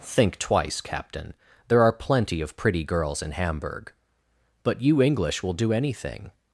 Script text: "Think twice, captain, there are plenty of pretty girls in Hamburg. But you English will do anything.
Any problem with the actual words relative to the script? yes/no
no